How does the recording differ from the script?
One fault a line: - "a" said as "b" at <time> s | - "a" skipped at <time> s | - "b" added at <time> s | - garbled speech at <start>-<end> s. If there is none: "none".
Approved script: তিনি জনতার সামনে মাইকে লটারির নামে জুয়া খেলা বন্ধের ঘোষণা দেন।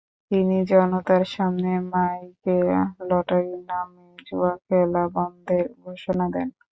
none